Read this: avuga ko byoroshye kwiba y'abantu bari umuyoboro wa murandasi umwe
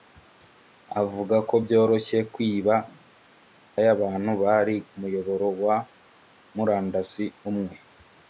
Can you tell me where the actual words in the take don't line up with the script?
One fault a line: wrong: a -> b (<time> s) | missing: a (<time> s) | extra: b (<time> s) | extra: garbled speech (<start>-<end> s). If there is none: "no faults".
no faults